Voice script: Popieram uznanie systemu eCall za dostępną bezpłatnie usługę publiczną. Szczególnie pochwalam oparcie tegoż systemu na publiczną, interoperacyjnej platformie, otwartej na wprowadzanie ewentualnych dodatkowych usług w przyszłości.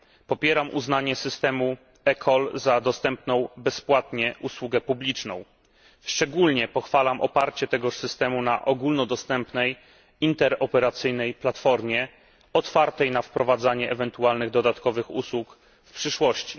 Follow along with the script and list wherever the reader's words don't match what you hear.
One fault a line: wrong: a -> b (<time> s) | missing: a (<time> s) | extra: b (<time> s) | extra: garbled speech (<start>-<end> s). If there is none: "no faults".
wrong: publiczną -> ogólnodostępnej (8.6 s)